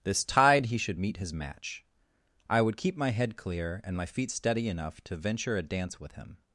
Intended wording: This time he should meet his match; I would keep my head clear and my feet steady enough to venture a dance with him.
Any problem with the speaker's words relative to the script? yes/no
yes